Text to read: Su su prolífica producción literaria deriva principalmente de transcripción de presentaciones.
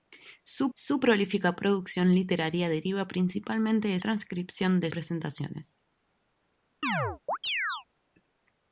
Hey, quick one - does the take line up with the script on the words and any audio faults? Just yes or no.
no